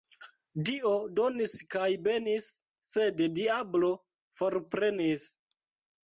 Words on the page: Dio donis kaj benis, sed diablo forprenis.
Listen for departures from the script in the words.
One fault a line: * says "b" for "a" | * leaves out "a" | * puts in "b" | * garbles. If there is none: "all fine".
all fine